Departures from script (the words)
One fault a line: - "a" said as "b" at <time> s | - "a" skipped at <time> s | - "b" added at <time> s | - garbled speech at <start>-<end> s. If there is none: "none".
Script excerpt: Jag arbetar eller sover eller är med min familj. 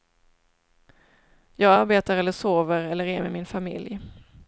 none